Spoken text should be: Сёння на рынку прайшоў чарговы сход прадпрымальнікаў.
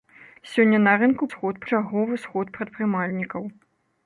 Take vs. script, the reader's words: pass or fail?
fail